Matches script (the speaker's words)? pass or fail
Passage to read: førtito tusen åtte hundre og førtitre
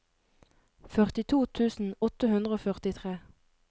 pass